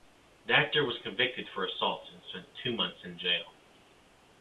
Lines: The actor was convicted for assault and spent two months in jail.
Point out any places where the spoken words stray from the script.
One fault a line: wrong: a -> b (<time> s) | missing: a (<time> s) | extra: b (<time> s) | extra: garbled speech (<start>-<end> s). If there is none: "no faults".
no faults